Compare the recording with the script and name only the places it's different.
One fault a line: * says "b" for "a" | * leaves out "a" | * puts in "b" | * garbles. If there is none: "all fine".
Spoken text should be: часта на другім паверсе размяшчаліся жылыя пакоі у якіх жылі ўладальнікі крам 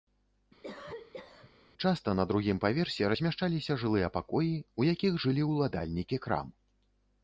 all fine